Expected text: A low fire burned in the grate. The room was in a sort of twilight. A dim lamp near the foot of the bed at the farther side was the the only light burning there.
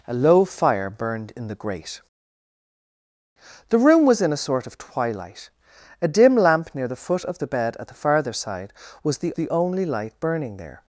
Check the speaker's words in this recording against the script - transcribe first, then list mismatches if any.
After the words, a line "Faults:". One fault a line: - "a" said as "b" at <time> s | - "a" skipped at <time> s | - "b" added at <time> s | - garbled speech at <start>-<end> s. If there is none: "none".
A low fire burned in the grate. The room was in a sort of twilight. A dim lamp near the foot of the bed at the farther side was the the only light burning there.
Faults:
none